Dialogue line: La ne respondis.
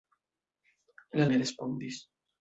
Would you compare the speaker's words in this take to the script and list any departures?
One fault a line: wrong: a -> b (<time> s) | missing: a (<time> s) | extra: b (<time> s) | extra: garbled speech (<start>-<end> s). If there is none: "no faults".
no faults